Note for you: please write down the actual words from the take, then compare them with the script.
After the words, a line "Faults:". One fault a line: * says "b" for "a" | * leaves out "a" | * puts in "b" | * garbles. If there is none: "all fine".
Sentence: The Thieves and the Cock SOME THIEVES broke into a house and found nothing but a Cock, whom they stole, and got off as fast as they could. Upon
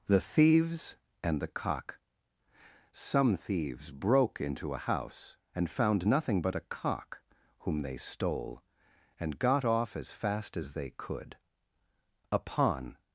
The Thieves and the Cock SOME THIEVES broke into a house and found nothing but a Cock, whom they stole, and got off as fast as they could. Upon
Faults:
all fine